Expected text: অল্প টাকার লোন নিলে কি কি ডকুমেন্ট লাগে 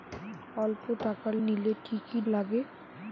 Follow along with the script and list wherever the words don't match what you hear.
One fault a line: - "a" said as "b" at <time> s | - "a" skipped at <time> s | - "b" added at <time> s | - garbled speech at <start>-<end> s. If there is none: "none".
- "লোন" skipped at 1.3 s
- "ডকুমেন্ট" skipped at 2.2 s